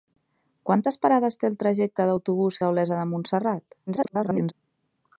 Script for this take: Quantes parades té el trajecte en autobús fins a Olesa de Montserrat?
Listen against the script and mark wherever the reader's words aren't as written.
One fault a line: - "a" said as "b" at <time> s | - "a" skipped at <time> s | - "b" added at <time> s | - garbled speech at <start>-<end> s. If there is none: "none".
- "fins" skipped at 2.6 s
- garbled speech at 3.9-4.5 s